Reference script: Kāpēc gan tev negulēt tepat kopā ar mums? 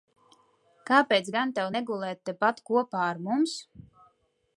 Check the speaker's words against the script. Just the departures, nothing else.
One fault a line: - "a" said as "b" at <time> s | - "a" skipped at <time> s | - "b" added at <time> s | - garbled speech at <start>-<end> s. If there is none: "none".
none